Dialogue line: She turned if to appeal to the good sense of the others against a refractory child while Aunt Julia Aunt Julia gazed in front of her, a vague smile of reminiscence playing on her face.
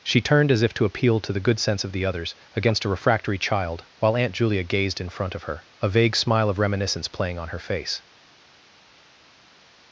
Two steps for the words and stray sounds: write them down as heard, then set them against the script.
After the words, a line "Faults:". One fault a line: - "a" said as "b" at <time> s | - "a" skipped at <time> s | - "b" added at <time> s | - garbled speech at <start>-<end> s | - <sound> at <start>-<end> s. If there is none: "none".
She turned as if to appeal to the good sense of the others against a refractory child while Aunt Julia gazed in front of her, a vague smile of reminiscence playing on her face.
Faults:
- "as" added at 0.5 s
- "Aunt Julia" skipped at 4.6 s